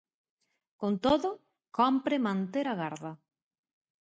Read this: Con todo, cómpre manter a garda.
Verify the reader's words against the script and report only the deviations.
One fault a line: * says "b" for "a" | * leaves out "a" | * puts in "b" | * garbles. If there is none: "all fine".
all fine